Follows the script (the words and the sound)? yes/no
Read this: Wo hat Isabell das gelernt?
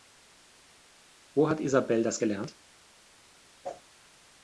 no